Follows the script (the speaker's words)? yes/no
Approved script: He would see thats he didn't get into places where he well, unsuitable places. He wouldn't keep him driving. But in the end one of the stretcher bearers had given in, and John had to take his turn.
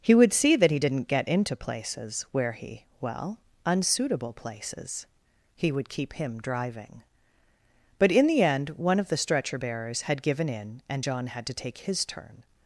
no